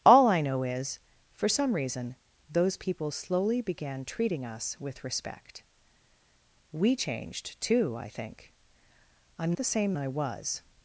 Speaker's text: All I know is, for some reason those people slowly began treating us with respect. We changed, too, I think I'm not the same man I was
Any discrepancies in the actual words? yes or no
yes